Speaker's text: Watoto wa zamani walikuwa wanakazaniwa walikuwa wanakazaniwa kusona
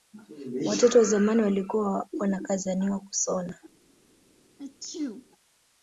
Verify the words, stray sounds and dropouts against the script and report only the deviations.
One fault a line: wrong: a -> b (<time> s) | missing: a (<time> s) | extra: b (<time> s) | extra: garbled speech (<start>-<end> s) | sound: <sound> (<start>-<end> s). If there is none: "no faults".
missing: walikuwa wanakazaniwa (3.0 s)
sound: sneeze (4.6-5.3 s)